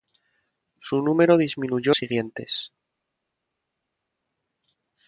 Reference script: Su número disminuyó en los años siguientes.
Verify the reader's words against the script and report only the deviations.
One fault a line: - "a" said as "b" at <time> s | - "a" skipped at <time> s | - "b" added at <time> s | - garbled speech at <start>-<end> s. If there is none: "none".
- "en los años" skipped at 1.9 s